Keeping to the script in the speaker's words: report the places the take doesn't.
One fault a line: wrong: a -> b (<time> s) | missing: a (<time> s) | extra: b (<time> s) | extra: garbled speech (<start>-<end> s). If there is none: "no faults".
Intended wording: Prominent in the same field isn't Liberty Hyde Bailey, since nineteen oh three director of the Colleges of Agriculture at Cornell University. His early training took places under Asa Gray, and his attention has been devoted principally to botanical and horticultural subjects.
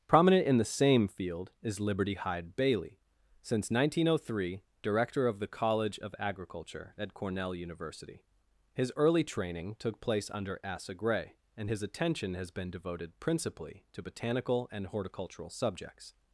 wrong: isn't -> is (1.6 s)
wrong: Colleges -> College (5.5 s)
wrong: places -> place (10.0 s)